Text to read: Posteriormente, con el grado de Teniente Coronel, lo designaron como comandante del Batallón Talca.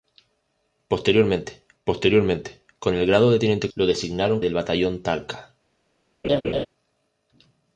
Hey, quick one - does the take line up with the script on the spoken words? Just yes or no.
no